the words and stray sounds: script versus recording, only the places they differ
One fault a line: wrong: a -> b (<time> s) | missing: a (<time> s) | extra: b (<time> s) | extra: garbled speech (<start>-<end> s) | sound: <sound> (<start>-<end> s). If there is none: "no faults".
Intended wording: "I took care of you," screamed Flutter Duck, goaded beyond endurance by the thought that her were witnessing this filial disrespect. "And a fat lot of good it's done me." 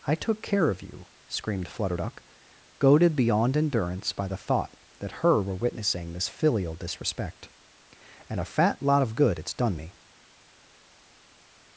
no faults